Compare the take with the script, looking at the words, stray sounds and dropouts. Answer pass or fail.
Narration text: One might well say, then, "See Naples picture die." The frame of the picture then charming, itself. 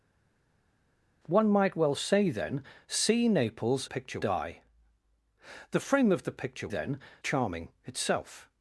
pass